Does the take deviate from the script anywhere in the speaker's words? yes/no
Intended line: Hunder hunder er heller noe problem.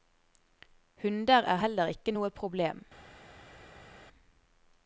yes